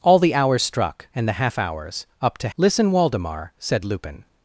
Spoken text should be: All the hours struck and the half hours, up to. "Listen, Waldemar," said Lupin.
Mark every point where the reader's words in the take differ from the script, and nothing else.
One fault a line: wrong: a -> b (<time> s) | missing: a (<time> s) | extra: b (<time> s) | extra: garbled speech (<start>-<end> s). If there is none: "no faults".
no faults